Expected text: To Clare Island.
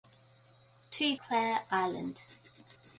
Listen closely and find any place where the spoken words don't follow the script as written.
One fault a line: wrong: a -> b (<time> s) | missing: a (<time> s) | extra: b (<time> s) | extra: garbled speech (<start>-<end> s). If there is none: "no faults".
no faults